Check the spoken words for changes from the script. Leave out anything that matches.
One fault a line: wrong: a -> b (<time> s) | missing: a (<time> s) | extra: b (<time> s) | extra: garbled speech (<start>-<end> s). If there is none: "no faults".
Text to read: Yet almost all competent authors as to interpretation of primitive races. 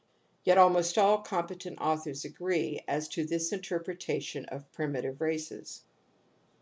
extra: agree (2.2 s)
extra: this (3.2 s)